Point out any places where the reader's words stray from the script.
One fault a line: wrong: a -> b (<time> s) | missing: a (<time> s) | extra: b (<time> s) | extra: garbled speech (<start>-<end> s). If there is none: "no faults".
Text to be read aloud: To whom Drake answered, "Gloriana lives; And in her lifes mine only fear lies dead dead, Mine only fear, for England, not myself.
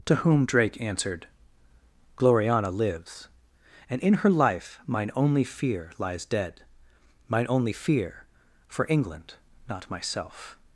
wrong: lifes -> life (4.3 s)
missing: dead (6.6 s)